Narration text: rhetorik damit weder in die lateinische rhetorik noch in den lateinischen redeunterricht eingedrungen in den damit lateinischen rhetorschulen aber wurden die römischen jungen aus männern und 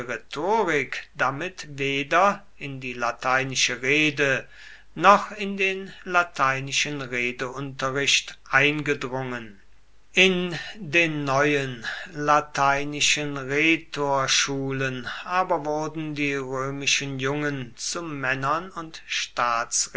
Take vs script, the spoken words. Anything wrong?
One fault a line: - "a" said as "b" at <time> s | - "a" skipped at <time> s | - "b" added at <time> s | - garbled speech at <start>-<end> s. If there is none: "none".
- "rhetorik" said as "rede" at 3.8 s
- "damit" said as "neuen" at 11.2 s
- "aus" said as "zu" at 17.8 s